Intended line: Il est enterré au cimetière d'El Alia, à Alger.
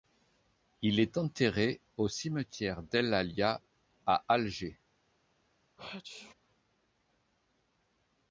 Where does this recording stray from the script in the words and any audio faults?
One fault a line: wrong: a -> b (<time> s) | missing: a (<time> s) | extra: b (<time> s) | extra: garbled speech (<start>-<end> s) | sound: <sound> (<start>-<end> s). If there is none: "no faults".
sound: sneeze (5.8-6.3 s)